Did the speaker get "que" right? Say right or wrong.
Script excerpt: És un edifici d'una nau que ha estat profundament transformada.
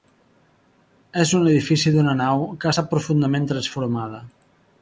right